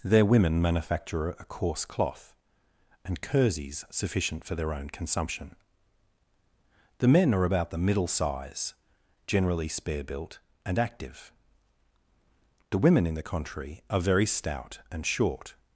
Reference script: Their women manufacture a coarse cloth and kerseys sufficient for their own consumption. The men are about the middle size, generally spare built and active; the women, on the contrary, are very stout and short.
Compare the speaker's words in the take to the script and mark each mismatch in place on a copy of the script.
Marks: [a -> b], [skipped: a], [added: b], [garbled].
Their women manufacture a coarse cloth and kerseys sufficient for their own consumption. The men are about the middle size, generally spare built and active; the women, [on -> in] the contrary, are very stout and short.